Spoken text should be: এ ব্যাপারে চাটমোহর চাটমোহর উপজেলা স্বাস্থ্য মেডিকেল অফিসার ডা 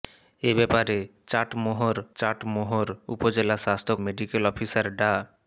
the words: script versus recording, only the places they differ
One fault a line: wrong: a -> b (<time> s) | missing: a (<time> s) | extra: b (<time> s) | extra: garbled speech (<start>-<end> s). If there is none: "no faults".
no faults